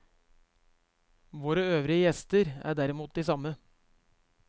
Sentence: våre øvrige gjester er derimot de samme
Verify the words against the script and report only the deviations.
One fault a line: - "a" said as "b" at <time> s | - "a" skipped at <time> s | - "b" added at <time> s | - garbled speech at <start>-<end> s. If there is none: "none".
none